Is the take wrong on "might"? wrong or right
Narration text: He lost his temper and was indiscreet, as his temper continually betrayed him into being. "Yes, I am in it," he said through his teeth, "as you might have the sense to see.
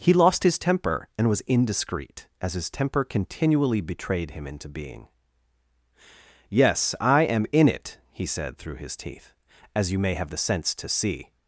wrong